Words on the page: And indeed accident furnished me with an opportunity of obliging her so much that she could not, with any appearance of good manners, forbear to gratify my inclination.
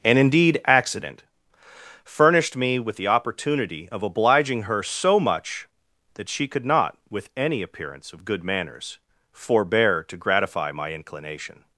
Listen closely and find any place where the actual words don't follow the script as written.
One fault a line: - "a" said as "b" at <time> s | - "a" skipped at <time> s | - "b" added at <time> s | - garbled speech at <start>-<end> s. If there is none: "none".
- "an" said as "the" at 3.0 s